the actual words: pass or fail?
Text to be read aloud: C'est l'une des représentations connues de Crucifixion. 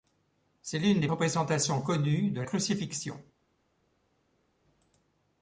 pass